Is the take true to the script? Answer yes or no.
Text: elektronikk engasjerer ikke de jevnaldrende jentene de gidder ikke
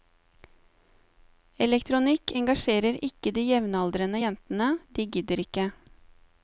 yes